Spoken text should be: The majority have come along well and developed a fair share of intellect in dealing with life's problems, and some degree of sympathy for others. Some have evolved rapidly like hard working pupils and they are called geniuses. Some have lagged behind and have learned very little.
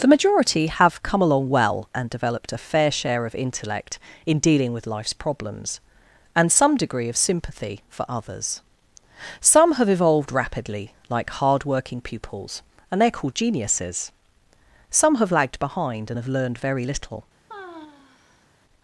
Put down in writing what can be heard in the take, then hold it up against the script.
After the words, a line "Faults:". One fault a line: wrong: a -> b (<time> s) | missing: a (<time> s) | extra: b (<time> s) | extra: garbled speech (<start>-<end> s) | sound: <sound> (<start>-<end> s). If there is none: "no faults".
The majority have come along well and developed a fair share of intellect in dealing with life's problems, and some degree of sympathy for others. Some have evolved rapidly like hard working pupils and they are called geniuses. Some have lagged behind and have learned very little.
Faults:
sound: sigh (17.5-18.5 s)